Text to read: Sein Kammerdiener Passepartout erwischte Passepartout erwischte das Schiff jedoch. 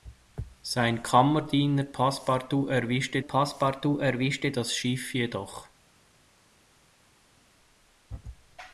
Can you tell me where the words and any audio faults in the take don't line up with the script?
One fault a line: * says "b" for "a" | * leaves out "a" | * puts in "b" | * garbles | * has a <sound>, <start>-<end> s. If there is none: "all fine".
all fine